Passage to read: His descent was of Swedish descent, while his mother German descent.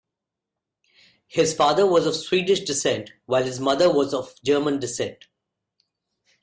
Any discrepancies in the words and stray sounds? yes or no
yes